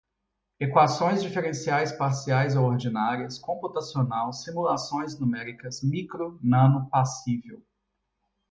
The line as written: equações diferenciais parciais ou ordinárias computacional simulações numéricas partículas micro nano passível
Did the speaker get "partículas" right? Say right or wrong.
wrong